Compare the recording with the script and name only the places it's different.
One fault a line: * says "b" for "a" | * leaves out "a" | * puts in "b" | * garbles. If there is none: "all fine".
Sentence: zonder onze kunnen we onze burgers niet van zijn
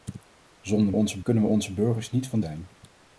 all fine